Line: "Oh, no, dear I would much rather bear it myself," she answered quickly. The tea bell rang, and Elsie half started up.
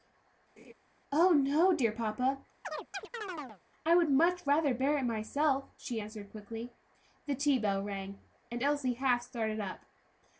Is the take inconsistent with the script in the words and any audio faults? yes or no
yes